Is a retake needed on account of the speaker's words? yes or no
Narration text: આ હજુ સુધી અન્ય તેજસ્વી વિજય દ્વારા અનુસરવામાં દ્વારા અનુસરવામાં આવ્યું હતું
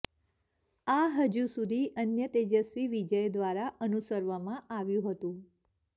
yes